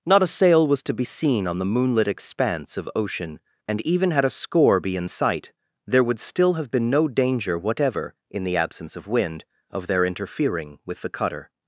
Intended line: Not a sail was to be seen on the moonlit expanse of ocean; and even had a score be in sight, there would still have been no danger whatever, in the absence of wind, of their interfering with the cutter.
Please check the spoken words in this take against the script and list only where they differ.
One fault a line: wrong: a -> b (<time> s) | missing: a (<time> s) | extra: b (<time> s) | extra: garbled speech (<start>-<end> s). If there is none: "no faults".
no faults